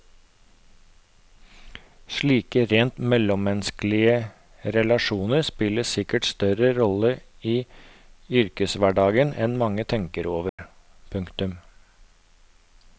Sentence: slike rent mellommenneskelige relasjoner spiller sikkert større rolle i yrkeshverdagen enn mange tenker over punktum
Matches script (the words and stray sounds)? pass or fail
fail